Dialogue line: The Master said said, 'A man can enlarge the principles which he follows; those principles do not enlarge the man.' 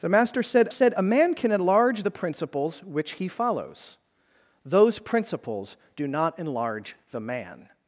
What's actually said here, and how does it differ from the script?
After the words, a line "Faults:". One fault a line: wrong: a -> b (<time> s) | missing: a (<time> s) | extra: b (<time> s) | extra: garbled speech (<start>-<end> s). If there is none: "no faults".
The Master said said, 'A man can enlarge the principles which he follows; those principles do not enlarge the man.'
Faults:
no faults